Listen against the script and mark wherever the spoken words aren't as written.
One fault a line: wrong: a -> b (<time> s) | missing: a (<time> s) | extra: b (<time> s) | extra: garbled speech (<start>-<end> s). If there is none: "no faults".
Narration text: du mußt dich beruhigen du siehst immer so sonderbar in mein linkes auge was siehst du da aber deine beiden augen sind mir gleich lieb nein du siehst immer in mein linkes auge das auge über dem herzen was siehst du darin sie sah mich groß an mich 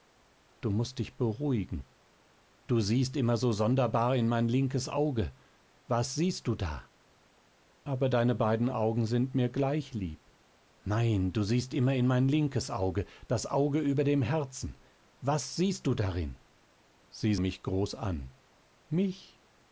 missing: sah (17.4 s)